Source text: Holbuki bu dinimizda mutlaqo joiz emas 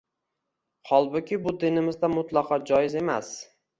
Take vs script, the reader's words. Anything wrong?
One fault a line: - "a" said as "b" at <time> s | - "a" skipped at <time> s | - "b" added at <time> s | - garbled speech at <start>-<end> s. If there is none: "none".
none